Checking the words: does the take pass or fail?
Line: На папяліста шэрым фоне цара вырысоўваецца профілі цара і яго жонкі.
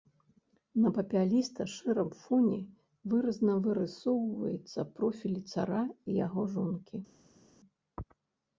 fail